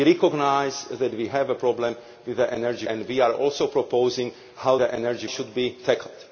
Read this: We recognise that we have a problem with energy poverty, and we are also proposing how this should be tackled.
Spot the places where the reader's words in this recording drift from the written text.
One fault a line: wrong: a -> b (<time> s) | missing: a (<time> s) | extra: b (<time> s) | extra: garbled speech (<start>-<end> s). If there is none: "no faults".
missing: poverty (2.9 s)
wrong: this -> energy (4.8 s)